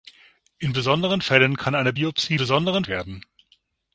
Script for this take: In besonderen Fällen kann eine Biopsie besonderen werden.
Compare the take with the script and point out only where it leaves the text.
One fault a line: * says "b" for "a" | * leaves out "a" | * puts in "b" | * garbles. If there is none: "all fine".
all fine